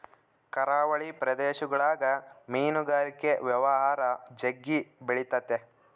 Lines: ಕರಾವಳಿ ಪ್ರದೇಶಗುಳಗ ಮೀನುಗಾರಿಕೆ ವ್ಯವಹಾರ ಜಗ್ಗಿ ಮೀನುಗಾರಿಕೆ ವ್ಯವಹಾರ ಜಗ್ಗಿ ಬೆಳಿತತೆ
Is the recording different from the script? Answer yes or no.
yes